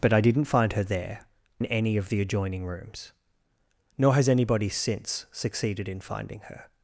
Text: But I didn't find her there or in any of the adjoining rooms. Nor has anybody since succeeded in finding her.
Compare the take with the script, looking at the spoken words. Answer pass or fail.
fail